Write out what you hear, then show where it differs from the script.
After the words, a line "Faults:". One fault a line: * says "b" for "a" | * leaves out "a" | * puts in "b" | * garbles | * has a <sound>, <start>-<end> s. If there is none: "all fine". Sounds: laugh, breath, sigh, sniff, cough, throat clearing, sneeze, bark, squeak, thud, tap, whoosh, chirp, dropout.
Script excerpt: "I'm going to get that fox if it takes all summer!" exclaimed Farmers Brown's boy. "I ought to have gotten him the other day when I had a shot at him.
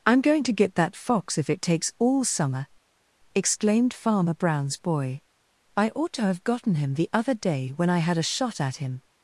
"I'm going to get that fox if it takes all summer!" exclaimed Farmer Brown's boy. "I ought to have gotten him the other day when I had a shot at him.
Faults:
* says "Farmer" for "Farmers"